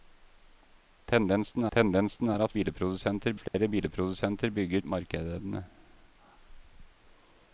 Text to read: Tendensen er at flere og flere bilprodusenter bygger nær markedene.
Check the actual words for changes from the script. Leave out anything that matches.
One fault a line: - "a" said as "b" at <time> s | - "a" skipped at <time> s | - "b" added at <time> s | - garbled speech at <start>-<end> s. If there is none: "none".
- "tendensen" added at 1.7 s
- "flere" said as "bilprodusenter" at 2.5 s
- "nær" skipped at 4.8 s